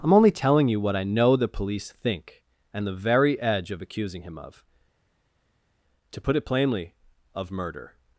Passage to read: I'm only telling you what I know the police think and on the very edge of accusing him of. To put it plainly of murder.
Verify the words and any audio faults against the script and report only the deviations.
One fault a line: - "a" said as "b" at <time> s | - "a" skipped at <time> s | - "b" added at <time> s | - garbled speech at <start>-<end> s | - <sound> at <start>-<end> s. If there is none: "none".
none